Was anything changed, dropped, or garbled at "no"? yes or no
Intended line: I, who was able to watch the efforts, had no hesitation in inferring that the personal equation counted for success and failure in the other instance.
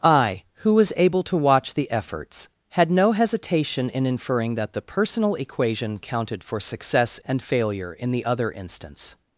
no